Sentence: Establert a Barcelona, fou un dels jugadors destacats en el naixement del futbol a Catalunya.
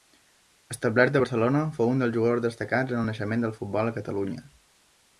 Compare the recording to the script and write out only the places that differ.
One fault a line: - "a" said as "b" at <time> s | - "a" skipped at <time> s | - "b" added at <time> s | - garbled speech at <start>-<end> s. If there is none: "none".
none